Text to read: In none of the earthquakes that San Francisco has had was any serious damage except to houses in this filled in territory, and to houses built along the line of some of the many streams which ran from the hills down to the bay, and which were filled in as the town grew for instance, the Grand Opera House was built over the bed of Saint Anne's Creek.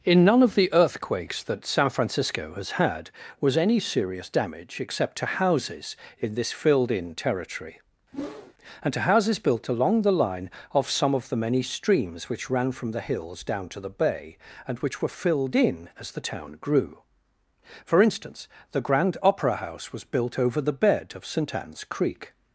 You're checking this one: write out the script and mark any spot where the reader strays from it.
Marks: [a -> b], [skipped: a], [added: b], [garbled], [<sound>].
In none of the earthquakes that San Francisco has had was any serious damage except to houses in this filled in territory, [whoosh] and to houses built along the line of some of the many streams which ran from the hills down to the bay, and which were filled in as the town grew for instance, the Grand Opera House was built over the bed of Saint Anne's Creek.